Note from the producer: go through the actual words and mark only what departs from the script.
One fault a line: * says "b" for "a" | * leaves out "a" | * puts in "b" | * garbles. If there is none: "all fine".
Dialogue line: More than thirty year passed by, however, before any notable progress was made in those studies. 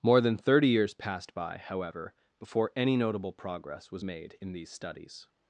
* says "years" for "year"
* says "these" for "those"